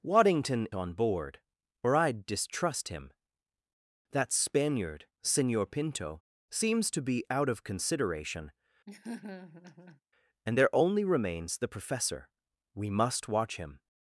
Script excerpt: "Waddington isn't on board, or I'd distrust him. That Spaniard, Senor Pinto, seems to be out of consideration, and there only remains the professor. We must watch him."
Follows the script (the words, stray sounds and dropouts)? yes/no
no